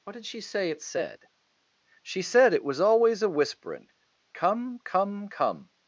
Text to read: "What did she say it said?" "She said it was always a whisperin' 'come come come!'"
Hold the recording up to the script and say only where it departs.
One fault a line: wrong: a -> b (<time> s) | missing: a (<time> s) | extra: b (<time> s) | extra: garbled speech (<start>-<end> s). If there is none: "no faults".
no faults